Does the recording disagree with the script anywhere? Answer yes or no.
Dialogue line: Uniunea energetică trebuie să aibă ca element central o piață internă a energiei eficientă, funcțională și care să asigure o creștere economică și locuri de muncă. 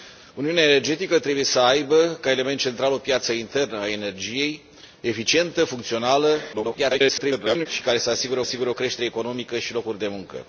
yes